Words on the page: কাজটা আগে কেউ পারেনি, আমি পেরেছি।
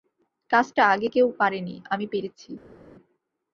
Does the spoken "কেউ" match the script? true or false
true